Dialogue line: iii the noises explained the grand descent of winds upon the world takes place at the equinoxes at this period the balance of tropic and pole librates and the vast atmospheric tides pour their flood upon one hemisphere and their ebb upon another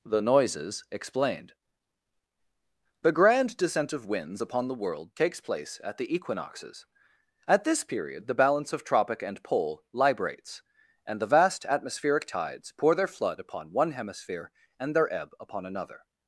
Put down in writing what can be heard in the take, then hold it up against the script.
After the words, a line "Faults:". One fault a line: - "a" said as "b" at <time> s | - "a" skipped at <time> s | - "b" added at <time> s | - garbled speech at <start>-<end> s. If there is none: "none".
the noises explained the grand descent of winds upon the world takes place at the equinoxes at this period the balance of tropic and pole librates and the vast atmospheric tides pour their flood upon one hemisphere and their ebb upon another
Faults:
- "iii" skipped at 0.0 s